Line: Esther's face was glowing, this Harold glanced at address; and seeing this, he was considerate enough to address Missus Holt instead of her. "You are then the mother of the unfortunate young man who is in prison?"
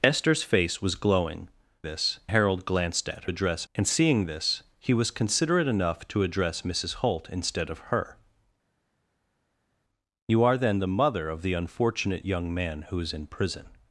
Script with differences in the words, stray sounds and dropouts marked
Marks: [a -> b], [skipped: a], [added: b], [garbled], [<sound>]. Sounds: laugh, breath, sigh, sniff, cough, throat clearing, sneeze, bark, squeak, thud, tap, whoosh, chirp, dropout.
Esther's face was glowing, this Harold glanced at address; and seeing this, he was considerate enough to address Missus Holt instead of her. "You are then the mother of the unfortunate young man who is in prison?"